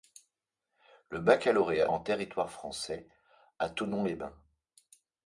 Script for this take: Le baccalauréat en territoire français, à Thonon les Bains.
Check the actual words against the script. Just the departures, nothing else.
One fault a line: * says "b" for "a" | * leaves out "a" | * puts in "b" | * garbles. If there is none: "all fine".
all fine